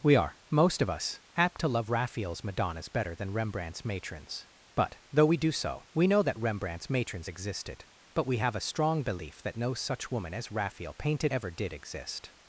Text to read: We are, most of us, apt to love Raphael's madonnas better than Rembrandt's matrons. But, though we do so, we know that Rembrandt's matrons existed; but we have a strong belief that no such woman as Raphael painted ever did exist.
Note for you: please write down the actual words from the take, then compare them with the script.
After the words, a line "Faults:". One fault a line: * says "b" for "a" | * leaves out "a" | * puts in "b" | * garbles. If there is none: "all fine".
We are, most of us, apt to love Raphael's madonnas better than Rembrandt's matrons. But, though we do so, we know that Rembrandt's matrons existed; but we have a strong belief that no such woman as Raphael painted ever did exist.
Faults:
all fine